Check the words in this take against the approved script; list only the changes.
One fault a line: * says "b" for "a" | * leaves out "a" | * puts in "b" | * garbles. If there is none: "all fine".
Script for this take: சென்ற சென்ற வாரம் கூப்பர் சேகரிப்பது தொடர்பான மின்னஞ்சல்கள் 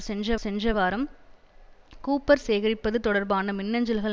all fine